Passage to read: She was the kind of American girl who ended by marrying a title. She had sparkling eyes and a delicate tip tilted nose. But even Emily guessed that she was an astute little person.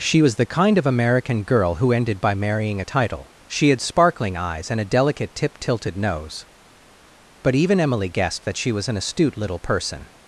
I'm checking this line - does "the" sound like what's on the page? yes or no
yes